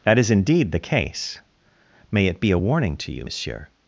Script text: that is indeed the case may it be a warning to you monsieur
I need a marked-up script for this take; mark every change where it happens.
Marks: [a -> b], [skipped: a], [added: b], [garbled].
that is indeed the case may it be a warning to you monsieur